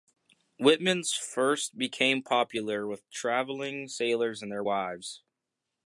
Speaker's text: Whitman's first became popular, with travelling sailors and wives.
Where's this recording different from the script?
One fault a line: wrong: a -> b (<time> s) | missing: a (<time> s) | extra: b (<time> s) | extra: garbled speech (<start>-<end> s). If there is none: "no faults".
extra: their (4.5 s)